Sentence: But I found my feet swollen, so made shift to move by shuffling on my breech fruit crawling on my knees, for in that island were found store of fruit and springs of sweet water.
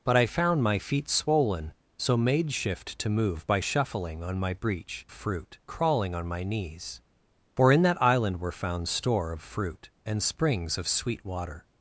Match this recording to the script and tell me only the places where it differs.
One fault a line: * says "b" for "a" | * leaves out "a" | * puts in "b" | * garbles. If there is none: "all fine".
all fine